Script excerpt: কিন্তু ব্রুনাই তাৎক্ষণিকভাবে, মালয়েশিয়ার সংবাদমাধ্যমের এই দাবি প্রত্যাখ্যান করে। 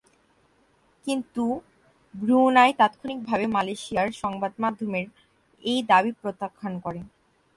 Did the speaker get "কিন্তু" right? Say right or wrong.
right